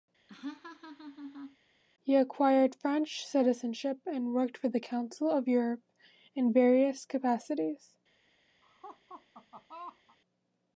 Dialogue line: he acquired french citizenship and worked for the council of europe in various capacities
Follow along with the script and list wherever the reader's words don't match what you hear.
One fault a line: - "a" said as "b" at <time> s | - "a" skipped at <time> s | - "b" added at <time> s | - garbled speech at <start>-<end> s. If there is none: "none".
none